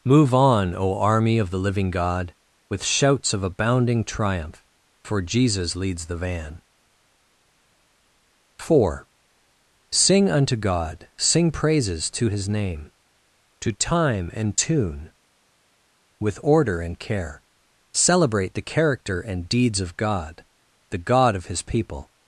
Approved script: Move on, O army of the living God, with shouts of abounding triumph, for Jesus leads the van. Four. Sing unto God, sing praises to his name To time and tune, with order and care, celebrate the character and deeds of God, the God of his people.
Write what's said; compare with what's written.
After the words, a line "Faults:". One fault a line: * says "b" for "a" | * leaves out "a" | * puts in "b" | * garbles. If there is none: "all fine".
Move on, O army of the living God, with shouts of abounding triumph, for Jesus leads the van. Four. Sing unto God, sing praises to his name To time and tune, with order and care, celebrate the character and deeds of God, the God of his people.
Faults:
all fine